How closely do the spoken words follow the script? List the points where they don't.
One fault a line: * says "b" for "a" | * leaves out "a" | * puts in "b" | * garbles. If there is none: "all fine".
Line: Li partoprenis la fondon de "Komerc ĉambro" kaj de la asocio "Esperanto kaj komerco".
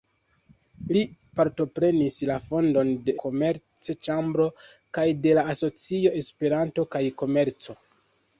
all fine